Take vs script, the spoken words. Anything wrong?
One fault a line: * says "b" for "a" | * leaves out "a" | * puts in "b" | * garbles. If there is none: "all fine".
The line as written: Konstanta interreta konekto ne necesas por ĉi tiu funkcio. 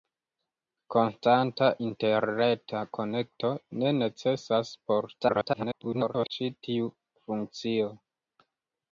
* garbles